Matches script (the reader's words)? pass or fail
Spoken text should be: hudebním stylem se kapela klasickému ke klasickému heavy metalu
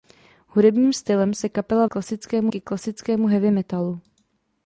pass